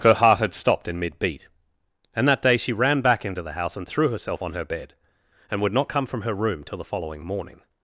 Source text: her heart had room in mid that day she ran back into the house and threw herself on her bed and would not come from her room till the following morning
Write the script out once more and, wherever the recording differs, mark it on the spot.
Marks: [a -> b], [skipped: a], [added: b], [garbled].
her heart had [room -> stopped] in mid [added: beat and] that day she ran back into the house and threw herself on her bed and would not come from her room till the following morning